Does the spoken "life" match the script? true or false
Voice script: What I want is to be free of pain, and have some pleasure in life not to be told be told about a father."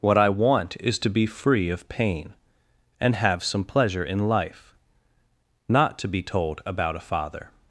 true